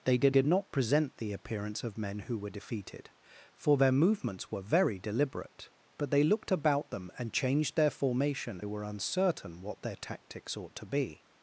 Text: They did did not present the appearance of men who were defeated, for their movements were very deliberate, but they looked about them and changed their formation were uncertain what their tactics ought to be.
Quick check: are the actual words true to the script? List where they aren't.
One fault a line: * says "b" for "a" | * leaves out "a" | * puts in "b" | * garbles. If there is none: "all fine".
all fine